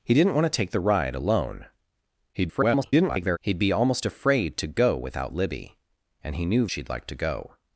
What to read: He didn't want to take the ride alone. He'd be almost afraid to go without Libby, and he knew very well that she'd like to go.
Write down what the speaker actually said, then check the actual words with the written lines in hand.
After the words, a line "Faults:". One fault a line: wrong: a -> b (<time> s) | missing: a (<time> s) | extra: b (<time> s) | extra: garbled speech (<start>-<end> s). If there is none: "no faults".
He didn't want to take the ride alone. [garbled] He'd be almost afraid to go without Libby, and he knew she'd like to go.
Faults:
extra: garbled speech (2.3-3.4 s)
missing: very well that (6.7 s)